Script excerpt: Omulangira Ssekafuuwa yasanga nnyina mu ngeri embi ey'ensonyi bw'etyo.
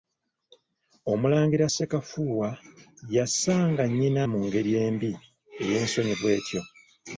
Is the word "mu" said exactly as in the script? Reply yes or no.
yes